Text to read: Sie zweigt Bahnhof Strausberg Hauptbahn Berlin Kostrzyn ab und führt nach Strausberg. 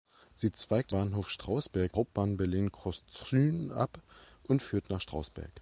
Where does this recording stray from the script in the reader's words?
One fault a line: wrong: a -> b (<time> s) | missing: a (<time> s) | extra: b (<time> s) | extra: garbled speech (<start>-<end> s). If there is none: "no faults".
no faults